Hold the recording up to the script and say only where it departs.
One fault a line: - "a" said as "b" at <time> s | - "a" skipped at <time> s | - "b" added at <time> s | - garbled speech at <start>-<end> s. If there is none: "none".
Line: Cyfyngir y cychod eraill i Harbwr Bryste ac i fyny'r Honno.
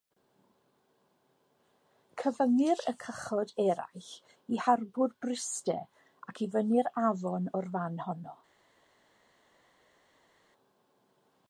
- "Afon o'r fan" added at 7.1 s